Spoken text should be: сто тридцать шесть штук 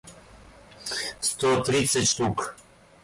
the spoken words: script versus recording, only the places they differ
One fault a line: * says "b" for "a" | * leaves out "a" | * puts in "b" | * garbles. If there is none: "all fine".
* leaves out "шесть"